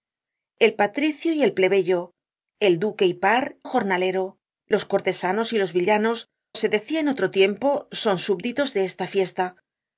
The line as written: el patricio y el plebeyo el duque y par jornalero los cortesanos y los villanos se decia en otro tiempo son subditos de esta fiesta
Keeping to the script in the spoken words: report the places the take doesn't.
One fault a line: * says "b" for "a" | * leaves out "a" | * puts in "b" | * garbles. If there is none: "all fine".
all fine